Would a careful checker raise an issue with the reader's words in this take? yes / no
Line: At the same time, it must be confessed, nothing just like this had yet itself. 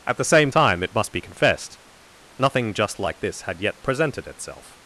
yes